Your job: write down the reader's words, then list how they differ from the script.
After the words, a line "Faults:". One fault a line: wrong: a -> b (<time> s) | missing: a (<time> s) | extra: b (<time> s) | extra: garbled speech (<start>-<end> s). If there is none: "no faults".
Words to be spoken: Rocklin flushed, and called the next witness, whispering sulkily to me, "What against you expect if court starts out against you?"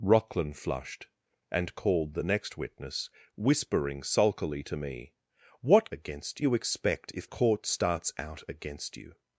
Rocklin flushed, and called the next witness, whispering sulkily to me, "What against you expect if court starts out against you?"
Faults:
no faults